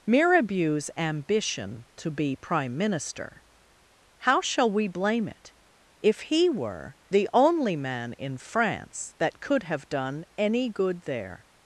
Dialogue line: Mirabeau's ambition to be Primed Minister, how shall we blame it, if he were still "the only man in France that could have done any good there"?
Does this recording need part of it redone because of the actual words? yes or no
yes